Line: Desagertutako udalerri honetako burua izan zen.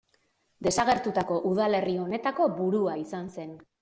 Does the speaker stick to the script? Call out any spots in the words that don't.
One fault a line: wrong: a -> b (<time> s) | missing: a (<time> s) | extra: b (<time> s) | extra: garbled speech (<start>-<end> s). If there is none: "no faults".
no faults